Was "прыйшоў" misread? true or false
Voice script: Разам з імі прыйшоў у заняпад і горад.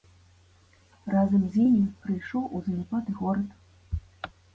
false